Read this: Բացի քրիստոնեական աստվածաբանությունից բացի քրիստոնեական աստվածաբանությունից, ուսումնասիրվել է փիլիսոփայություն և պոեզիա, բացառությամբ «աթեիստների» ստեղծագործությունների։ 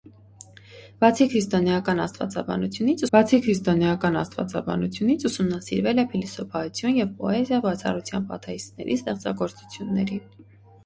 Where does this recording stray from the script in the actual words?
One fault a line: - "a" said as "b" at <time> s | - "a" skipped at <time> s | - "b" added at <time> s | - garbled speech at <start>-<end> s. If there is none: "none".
none